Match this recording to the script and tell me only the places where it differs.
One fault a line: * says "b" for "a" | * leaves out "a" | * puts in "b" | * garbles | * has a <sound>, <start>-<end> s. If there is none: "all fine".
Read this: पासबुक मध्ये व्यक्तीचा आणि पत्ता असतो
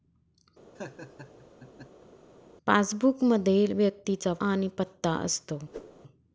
* has a laugh, 0.7-2.1 s
* has a whoosh, 5.7-6.0 s